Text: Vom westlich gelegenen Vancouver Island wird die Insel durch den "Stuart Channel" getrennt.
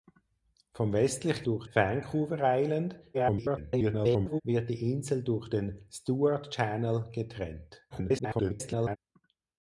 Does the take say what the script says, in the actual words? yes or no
no